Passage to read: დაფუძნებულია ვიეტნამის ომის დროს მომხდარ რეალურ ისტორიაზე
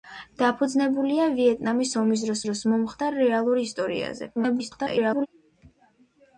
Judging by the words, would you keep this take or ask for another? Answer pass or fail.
fail